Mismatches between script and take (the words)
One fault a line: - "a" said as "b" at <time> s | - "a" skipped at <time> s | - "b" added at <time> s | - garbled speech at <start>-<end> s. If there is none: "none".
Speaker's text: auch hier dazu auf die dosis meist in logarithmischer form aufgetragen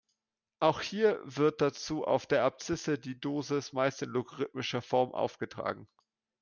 - "wird" added at 1.2 s
- "der abszisse" added at 2.2 s